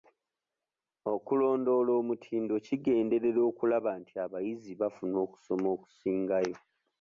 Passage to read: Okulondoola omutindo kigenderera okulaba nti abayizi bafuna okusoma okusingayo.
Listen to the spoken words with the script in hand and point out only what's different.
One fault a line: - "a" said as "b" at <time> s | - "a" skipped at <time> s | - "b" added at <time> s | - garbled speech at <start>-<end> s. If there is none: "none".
none